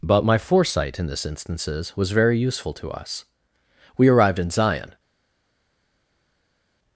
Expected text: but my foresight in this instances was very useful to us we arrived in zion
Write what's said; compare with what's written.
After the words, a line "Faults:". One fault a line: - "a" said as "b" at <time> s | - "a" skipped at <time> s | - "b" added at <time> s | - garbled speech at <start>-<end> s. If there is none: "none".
but my foresight in this instances was very useful to us we arrived in zion
Faults:
none